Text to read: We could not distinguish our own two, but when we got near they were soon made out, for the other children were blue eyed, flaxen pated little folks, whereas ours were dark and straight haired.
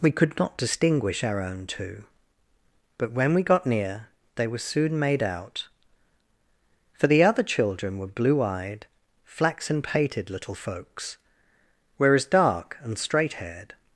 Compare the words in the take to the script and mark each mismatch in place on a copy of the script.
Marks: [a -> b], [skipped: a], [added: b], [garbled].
We could not distinguish our own two, but when we got near they were soon made out, for the other children were blue eyed, flaxen pated little folks, whereas [skipped: ours were] dark and straight haired.